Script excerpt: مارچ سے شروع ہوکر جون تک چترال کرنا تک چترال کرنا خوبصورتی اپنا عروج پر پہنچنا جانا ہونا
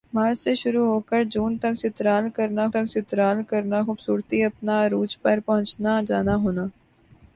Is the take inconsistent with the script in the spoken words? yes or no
no